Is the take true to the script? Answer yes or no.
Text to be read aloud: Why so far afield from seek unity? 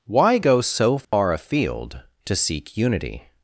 no